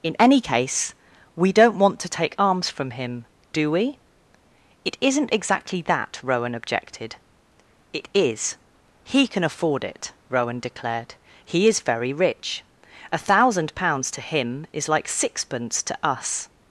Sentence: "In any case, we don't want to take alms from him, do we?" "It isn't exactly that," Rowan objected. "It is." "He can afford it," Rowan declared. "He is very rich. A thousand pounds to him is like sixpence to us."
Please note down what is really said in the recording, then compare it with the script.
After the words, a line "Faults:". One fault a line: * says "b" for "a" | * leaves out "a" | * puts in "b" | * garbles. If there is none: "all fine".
"In any case, we don't want to take arms from him, do we?" "It isn't exactly that," Rowan objected. "It is." "He can afford it," Rowan declared. "He is very rich. A thousand pounds to him is like sixpence to us."
Faults:
* says "arms" for "alms"